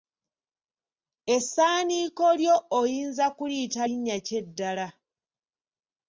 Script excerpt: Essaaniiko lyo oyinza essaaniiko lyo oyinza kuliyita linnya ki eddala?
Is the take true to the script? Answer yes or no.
no